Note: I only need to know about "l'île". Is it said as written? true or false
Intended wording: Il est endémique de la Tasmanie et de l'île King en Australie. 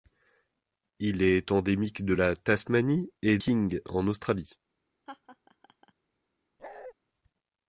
false